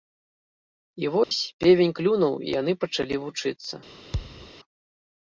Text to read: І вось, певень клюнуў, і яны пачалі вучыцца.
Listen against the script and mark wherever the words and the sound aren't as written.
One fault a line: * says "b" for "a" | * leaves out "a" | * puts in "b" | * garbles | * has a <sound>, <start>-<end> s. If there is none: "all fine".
* has a dropout, 1.2-1.3 s
* has a thud, 4.1-4.5 s